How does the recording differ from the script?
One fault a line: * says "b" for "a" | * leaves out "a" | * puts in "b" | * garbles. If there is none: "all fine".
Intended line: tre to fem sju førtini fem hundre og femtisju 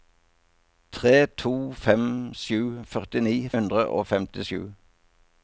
* leaves out "fem"